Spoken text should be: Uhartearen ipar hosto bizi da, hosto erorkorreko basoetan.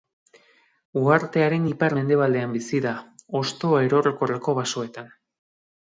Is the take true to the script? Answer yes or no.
no